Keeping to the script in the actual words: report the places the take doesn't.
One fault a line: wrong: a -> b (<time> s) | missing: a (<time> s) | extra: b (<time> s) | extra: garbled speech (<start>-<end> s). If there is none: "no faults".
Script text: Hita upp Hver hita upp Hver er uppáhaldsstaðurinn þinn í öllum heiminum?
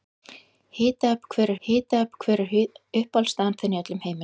no faults